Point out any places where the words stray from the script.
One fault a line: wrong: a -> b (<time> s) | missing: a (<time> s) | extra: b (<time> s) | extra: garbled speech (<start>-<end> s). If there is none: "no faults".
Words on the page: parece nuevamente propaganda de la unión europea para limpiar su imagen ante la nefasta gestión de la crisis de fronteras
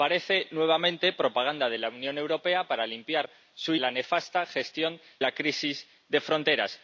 missing: imagen ante (3.8 s)
missing: de (5.0 s)